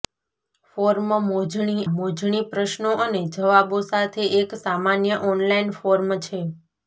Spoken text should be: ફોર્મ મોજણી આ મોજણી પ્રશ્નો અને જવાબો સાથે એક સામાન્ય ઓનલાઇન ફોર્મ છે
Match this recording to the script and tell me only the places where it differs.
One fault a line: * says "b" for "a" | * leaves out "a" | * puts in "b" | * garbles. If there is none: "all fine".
* leaves out "આ"